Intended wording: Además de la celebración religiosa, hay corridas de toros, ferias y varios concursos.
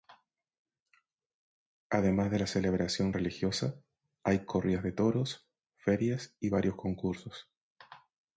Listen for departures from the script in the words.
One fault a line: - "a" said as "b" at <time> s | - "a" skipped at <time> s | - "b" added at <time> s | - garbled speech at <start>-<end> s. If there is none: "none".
none